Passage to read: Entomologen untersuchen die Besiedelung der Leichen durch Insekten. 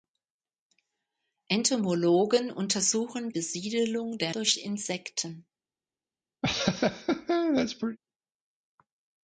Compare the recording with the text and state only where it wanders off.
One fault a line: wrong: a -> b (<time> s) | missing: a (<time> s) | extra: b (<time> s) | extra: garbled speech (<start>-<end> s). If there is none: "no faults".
missing: die (3.3 s)
missing: Leichen (4.3 s)